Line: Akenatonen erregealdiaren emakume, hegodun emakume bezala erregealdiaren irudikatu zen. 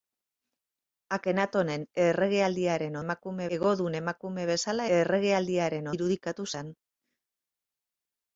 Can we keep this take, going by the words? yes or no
yes